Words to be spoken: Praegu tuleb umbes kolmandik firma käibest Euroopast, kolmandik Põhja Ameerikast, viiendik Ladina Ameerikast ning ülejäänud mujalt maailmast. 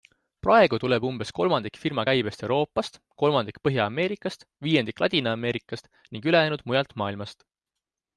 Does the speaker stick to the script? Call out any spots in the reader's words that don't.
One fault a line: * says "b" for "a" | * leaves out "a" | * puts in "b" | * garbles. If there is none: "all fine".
all fine